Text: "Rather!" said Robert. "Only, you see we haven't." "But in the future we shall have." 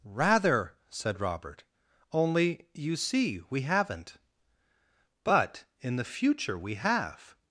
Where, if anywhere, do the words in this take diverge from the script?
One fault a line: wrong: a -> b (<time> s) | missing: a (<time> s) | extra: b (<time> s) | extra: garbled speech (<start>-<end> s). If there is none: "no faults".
missing: shall (6.8 s)